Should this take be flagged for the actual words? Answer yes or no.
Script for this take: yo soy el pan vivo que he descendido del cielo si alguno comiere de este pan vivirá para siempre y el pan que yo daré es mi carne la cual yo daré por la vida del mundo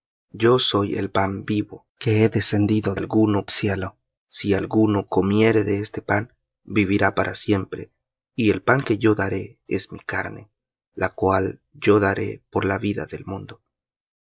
yes